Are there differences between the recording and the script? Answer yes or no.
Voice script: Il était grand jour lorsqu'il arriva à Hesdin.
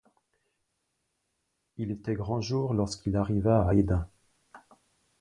no